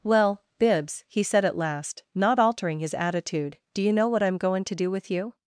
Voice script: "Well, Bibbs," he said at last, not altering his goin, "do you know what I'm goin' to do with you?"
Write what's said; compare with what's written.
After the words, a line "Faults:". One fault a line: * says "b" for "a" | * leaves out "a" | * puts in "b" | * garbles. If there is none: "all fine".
"Well, Bibbs," he said at last, not altering his attitude, "do you know what I'm goin' to do with you?"
Faults:
* says "attitude" for "goin"